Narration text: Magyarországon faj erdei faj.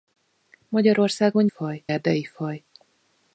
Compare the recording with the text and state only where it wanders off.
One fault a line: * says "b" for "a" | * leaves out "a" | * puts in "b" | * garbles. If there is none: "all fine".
all fine